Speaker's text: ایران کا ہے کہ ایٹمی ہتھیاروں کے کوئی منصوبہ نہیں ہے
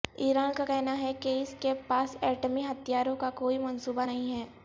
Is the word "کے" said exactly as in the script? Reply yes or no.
no